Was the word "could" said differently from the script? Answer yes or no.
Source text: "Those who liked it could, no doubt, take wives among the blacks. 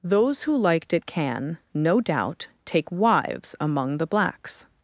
yes